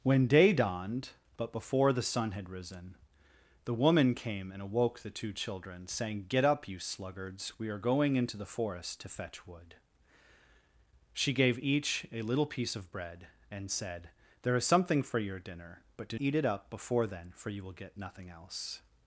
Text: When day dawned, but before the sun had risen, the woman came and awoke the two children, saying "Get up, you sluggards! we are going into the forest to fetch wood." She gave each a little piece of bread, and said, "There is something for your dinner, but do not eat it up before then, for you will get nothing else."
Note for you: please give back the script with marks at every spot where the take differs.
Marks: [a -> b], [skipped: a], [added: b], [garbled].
When day dawned, but before the sun had risen, the woman came and awoke the two children, saying "Get up, you sluggards! we are going into the forest to fetch wood." She gave each a little piece of bread, and said, "There is something for your dinner, but do [skipped: not] eat it up before then, for you will get nothing else."